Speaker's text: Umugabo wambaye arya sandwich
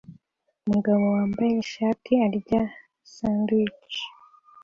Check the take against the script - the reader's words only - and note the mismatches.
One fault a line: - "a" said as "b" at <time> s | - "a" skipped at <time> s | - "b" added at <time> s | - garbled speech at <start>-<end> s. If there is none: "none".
- "ishati" added at 1.6 s